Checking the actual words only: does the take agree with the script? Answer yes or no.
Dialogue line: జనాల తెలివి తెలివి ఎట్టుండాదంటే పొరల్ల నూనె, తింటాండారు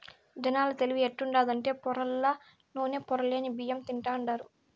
no